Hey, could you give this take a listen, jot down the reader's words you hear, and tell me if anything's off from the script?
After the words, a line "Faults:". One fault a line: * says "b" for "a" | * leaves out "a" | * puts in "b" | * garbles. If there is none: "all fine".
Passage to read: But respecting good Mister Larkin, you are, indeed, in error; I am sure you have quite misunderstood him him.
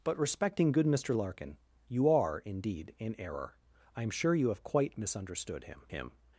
But respecting good Mister Larkin, you are, indeed, in error; I am sure you have quite misunderstood him him.
Faults:
all fine